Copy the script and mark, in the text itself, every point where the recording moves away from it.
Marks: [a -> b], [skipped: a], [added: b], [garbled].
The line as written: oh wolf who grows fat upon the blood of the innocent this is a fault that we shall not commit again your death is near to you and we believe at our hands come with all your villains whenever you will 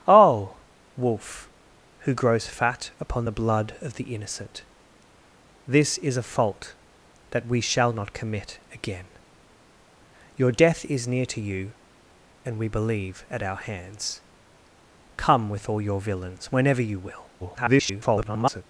oh wolf who grows fat upon the blood of the innocent this is a fault that we shall not commit again your death is near to you and we believe at our hands come with all your villains whenever you will [garbled]